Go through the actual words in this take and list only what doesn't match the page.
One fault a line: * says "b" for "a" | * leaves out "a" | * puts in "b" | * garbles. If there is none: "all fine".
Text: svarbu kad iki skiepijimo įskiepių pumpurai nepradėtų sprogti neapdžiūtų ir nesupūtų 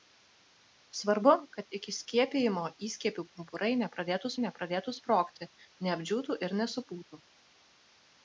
* puts in "nepradėtų"